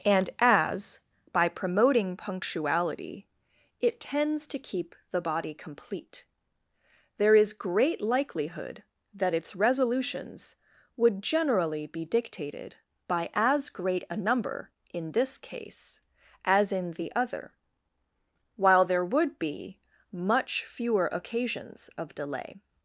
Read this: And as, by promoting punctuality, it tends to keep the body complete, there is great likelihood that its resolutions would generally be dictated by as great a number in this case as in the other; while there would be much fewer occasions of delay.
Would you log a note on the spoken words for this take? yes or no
no